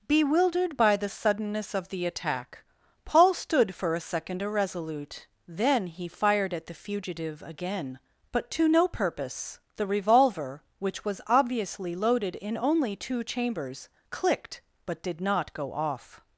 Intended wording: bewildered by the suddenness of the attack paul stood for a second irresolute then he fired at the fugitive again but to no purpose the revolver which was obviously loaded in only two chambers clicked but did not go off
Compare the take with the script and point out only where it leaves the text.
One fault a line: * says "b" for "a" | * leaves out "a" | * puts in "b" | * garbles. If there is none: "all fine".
all fine